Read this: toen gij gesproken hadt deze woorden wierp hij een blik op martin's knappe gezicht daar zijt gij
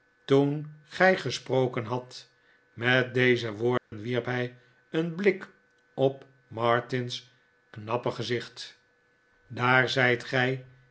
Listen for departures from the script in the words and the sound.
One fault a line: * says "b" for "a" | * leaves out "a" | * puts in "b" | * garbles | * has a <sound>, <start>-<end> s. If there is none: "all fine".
* puts in "met"
* has a dropout, 3.8-3.9 s